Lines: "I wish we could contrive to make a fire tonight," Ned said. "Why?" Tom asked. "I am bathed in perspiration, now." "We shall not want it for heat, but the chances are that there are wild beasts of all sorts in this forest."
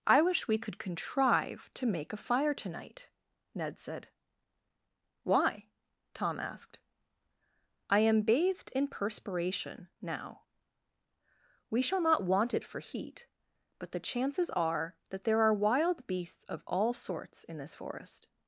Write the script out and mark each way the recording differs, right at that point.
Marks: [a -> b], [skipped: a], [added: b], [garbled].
"I wish we could contrive to make a fire tonight," Ned said. "Why?" Tom asked. "I am bathed in perspiration, now." "We shall not want it for heat, but the chances are that there are wild beasts of all sorts in this forest."